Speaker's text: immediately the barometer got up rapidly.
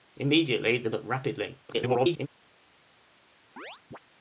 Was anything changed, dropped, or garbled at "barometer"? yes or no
yes